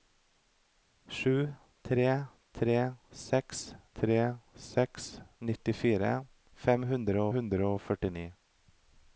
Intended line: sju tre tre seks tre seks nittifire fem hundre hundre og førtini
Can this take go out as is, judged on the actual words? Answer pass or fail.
pass